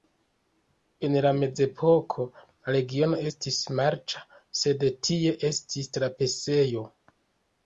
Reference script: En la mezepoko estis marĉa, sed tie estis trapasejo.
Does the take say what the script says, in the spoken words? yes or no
no